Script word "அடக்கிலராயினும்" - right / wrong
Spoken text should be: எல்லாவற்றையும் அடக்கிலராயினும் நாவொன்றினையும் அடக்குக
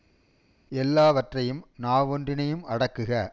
wrong